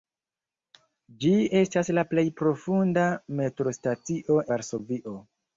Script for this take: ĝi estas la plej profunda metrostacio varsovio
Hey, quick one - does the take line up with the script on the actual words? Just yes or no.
yes